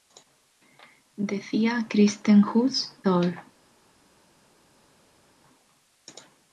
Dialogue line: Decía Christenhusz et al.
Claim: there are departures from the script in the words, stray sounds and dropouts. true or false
true